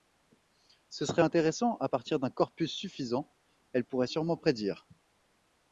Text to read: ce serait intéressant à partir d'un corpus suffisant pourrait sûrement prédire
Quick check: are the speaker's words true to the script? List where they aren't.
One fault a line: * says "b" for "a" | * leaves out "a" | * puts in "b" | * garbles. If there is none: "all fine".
* puts in "elle"